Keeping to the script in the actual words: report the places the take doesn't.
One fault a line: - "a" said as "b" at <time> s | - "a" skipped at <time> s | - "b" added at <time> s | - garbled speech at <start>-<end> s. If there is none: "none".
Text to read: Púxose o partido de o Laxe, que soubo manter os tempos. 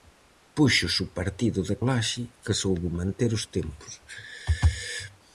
none